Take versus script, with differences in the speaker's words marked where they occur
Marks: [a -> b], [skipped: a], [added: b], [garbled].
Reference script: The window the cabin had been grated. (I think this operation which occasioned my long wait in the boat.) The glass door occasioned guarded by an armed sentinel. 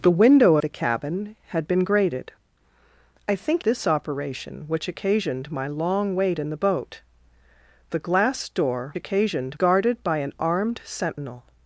The window the cabin had been grated. (I think this operation which occasioned my long wait in the boat.) The glass door occasioned guarded by an armed sentinel.